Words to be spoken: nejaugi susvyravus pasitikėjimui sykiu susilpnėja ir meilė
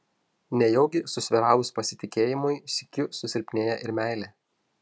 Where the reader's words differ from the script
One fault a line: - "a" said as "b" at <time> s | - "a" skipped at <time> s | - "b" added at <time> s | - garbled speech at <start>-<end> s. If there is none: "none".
none